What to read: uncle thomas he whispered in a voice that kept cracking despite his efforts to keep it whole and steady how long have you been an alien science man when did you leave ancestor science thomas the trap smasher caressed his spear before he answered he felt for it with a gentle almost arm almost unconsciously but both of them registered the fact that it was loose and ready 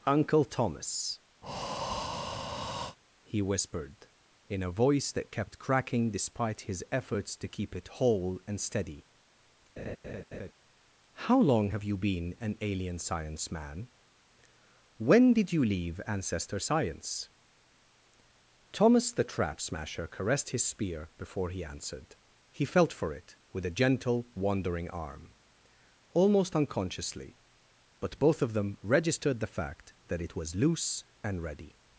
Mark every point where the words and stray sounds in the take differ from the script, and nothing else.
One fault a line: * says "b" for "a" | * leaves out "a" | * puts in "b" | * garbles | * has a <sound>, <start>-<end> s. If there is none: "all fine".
* has a breath, 1.4-3.0 s
* has a laugh, 9.8-10.5 s
* says "wandering" for "almost"